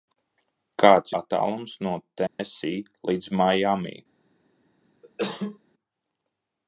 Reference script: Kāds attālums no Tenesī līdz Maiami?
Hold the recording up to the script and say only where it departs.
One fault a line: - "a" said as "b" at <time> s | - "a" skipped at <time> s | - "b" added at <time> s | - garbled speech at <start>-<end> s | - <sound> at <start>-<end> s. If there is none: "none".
- dropout at 2.3-2.4 s
- cough at 5.0-5.6 s